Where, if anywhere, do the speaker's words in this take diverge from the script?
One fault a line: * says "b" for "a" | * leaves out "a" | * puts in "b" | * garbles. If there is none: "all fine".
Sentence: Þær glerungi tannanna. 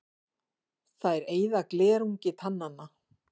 * puts in "eyða"